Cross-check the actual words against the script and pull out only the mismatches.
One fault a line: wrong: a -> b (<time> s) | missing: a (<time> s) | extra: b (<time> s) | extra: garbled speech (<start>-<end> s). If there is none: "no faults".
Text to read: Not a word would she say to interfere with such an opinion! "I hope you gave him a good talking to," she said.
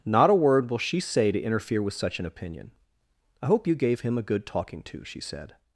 wrong: would -> will (0.7 s)